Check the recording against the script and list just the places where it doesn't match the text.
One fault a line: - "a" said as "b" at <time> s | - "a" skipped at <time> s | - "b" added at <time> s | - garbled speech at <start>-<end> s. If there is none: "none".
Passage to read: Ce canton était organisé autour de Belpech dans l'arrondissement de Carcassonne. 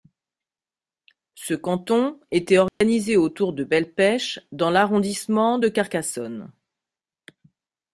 none